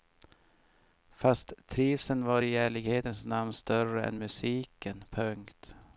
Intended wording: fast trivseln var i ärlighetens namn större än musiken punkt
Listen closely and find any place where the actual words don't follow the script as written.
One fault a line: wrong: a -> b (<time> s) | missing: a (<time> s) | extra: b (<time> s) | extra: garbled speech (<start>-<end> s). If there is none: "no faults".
no faults